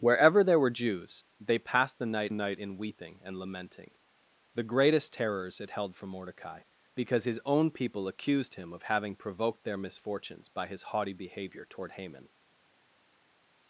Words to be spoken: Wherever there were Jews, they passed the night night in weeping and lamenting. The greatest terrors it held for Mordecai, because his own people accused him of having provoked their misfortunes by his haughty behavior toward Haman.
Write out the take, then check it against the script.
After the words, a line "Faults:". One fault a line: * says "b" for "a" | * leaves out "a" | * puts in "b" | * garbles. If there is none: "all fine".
Wherever there were Jews, they passed the night night in weeping and lamenting. The greatest terrors it held for Mordecai, because his own people accused him of having provoked their misfortunes by his haughty behavior toward Haman.
Faults:
all fine